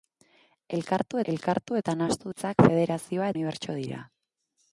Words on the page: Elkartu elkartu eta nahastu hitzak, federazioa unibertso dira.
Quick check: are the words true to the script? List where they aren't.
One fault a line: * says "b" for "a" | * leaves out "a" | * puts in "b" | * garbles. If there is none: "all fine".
all fine